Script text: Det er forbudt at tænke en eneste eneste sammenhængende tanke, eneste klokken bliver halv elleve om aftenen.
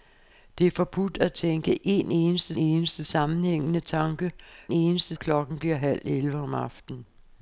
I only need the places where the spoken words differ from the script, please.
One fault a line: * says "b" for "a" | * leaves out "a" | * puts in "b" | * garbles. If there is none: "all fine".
all fine